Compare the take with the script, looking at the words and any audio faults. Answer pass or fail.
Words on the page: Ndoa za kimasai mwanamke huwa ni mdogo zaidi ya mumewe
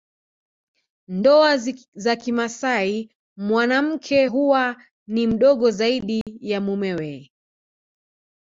fail